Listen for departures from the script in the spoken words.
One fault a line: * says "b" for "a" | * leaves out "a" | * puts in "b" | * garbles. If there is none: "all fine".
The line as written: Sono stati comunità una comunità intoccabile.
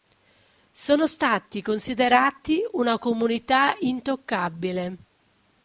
* says "considerati" for "comunità"